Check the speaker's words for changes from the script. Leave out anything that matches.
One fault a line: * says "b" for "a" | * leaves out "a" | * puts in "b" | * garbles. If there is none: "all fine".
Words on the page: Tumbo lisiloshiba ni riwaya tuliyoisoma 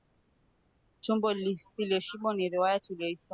all fine